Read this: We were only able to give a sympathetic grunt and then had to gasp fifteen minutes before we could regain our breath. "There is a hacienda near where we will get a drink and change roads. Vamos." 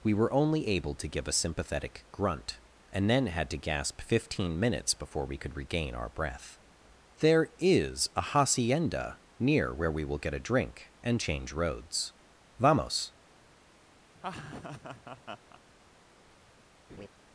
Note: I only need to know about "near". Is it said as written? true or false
true